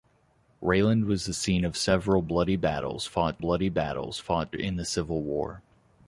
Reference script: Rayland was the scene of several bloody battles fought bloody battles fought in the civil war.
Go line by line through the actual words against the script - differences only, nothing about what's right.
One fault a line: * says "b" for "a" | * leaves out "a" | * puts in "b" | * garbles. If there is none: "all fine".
all fine